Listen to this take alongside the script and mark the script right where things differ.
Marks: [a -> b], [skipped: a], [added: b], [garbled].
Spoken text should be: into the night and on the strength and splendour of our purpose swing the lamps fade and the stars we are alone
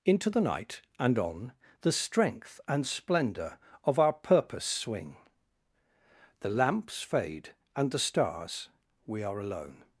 into the night and on the strength and splendour of our purpose swing the lamps fade and the stars we are alone